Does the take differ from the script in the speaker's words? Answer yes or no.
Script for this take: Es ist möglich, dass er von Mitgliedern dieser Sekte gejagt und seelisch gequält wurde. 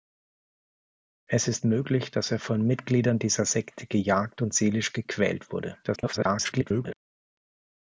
yes